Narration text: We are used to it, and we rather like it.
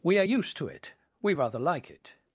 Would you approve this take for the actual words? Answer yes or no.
no